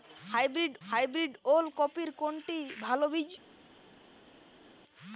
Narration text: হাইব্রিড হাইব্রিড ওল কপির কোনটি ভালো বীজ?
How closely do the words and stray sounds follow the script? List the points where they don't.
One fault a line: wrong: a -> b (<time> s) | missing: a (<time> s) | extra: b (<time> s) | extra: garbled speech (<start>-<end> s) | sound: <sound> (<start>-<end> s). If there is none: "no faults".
no faults